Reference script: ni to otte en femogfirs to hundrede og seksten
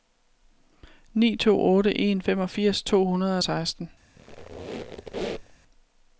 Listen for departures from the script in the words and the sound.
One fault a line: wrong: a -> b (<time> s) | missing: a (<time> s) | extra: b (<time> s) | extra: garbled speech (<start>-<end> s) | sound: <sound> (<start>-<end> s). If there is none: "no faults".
sound: squeak (4.2-5.6 s)